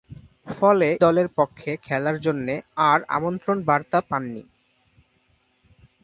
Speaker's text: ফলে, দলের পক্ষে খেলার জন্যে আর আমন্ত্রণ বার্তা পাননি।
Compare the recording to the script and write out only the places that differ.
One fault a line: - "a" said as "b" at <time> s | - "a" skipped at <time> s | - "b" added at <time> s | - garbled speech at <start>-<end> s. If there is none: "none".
none